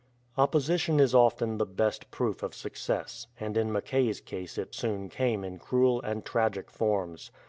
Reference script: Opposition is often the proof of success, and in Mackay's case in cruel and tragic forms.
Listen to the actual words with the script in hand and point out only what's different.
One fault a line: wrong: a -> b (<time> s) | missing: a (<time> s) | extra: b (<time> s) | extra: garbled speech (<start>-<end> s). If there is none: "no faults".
extra: best (1.7 s)
extra: it soon came (4.6 s)